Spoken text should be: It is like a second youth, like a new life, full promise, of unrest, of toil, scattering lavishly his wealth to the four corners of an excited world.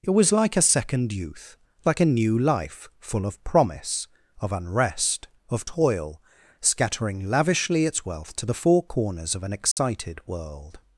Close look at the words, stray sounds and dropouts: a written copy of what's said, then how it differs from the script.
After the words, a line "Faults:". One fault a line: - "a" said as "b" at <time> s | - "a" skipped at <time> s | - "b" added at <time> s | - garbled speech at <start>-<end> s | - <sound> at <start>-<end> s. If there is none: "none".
It was like a second youth, like a new life, full of promise, of unrest, of toil, scattering lavishly its wealth to the four corners of an excited world.
Faults:
- "is" said as "was" at 0.1 s
- "of" added at 3.2 s
- "his" said as "its" at 7.8 s
- dropout at 9.7-9.8 s